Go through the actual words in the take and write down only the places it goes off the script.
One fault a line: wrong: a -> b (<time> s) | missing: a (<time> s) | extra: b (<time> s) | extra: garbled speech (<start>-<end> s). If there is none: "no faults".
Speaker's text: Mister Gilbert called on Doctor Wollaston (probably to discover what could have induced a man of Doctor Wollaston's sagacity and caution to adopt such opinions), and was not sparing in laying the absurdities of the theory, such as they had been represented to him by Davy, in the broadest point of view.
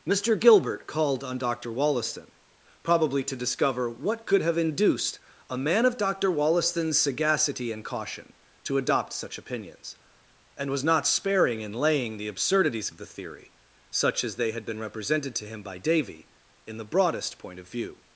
no faults